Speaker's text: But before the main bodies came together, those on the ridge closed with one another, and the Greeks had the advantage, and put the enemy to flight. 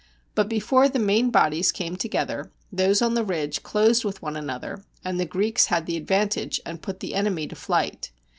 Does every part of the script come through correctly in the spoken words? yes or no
yes